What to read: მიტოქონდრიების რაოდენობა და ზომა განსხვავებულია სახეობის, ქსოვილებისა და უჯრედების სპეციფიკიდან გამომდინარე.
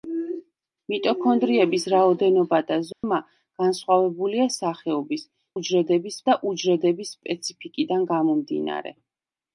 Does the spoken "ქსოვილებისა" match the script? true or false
false